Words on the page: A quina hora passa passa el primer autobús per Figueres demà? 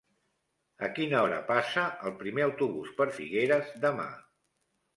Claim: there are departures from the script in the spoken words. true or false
true